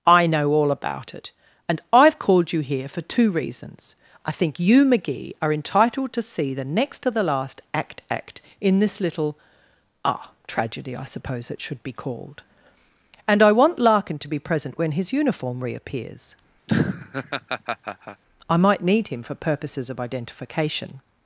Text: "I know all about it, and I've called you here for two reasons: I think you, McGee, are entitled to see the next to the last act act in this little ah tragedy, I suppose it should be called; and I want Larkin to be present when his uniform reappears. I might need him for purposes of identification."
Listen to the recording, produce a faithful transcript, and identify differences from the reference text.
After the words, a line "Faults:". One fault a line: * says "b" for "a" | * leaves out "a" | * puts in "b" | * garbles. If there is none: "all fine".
"I know all about it, and I've called you here for two reasons: I think you, McGee, are entitled to see the next to the last act act in this little ah tragedy, I suppose it should be called; and I want Larkin to be present when his uniform reappears. I might need him for purposes of identification."
Faults:
all fine